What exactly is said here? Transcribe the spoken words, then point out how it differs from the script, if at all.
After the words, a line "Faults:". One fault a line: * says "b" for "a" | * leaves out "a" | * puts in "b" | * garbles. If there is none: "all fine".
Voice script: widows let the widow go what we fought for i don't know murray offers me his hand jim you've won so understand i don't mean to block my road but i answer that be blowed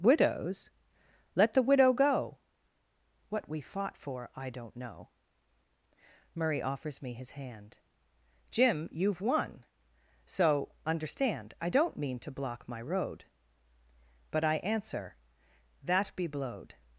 widows let the widow go what we fought for i don't know murray offers me his hand jim you've won so understand i don't mean to block my road but i answer that be blowed
Faults:
all fine